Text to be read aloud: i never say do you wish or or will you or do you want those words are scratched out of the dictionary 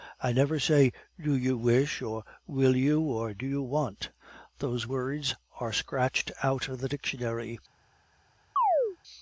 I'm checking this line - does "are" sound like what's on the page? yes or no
yes